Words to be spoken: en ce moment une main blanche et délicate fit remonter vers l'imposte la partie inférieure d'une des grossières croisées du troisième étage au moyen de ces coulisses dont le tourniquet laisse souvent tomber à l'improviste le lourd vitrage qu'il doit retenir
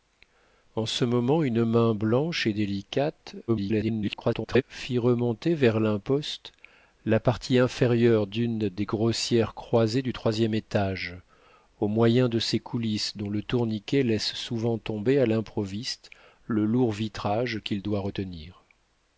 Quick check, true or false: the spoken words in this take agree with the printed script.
false